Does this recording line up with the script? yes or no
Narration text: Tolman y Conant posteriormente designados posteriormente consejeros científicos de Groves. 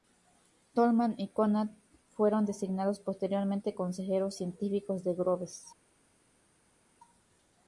no